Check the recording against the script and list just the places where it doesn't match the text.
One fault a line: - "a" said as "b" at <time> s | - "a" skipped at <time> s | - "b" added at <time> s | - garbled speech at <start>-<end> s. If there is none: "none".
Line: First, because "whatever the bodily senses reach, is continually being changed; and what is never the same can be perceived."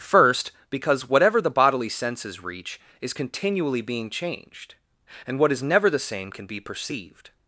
none